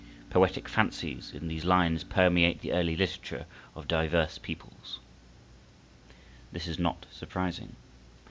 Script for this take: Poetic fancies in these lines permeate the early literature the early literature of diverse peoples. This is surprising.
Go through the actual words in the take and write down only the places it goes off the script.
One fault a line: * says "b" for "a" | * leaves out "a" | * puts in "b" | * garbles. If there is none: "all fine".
* leaves out "the early literature"
* puts in "not"